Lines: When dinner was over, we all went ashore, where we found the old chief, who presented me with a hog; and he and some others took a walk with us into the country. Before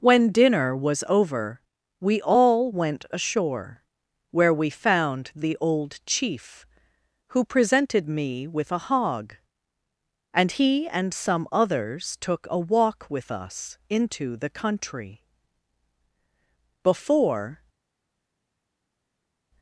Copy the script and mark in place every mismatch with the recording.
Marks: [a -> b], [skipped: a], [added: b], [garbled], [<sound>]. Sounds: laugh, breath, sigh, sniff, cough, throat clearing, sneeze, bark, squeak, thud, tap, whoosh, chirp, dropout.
When dinner was over, we all went ashore, where we found the old chief, who presented me with a hog; and he and some others took a walk with us into the country. Before